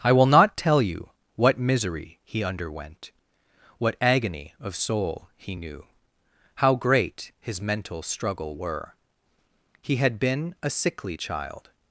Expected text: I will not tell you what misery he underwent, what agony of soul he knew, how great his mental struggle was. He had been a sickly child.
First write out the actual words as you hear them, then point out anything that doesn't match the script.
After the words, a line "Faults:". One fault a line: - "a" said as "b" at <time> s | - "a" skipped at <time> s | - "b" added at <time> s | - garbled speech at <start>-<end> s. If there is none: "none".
I will not tell you what misery he underwent, what agony of soul he knew, how great his mental struggle were. He had been a sickly child.
Faults:
- "was" said as "were" at 8.5 s